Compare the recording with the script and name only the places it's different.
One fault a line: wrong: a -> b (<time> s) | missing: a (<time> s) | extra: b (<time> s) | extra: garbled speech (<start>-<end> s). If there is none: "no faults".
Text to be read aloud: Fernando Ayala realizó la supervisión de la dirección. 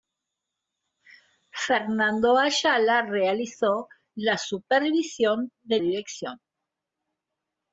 missing: la (5.8 s)